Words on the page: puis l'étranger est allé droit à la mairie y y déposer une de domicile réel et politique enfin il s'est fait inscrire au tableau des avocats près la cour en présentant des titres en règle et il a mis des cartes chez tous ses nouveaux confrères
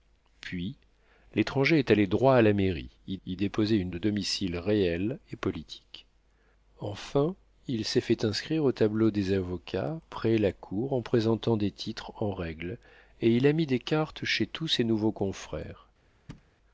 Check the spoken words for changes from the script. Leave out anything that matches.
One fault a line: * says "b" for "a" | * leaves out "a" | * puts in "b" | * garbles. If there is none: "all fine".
all fine